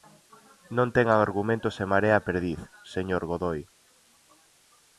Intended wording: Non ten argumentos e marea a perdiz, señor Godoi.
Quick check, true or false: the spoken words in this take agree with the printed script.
true